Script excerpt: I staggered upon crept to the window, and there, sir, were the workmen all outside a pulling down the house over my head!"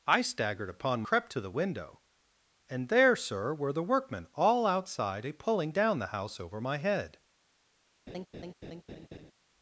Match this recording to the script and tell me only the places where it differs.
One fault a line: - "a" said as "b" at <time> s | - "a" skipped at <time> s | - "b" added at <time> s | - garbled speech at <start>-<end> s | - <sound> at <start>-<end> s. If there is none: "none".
- laugh at 8.1-9.3 s